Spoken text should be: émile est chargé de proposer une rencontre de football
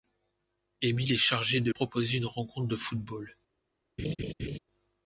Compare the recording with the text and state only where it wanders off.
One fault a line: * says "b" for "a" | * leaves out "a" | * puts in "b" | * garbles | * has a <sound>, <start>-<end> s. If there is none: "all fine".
* has a laugh, 4.0-4.6 s